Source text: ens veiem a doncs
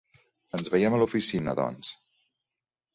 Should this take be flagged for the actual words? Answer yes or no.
yes